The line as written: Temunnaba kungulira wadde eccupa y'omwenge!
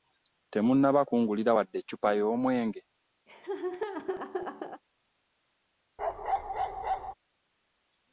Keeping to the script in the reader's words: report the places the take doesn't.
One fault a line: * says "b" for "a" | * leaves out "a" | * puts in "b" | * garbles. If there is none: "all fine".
all fine